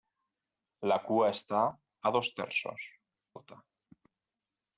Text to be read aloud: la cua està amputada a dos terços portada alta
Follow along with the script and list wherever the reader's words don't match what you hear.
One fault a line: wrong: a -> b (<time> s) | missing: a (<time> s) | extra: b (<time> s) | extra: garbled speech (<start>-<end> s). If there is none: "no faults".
missing: amputada (1.6 s)
missing: portada (2.9 s)